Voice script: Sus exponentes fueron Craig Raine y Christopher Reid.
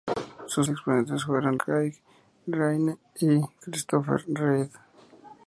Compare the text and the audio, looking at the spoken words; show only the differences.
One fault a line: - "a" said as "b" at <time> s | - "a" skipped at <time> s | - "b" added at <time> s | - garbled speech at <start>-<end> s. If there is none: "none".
none